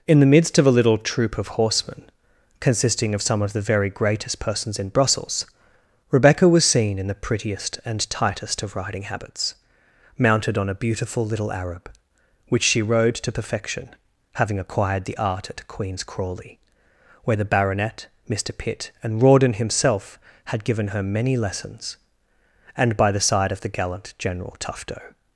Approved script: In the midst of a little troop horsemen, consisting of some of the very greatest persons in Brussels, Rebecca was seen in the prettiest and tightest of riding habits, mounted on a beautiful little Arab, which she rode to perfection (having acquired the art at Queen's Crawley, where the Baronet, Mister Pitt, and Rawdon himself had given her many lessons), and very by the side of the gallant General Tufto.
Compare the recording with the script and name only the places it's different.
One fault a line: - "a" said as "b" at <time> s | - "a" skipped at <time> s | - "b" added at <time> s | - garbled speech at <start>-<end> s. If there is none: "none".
- "of" added at 1.4 s
- "very" skipped at 23.0 s